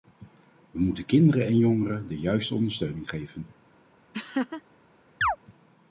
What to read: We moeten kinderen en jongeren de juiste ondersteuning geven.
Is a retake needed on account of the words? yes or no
no